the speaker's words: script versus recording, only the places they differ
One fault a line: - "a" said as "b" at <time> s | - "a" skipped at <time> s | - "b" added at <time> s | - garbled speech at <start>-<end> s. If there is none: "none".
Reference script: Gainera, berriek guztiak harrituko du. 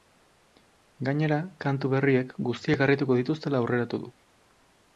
- "kantu" added at 1.7 s
- "dituztela aurreratu" added at 3.2 s